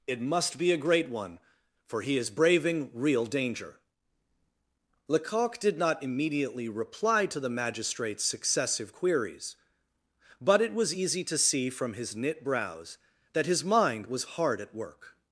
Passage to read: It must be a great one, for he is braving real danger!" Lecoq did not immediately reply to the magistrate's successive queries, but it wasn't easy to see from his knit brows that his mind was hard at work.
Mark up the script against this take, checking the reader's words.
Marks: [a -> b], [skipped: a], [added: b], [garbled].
It must be a great one, for he is braving real danger!" Lecoq did not immediately reply to the magistrate's successive queries, but it [wasn't -> was] easy to see from his knit brows that his mind was hard at work.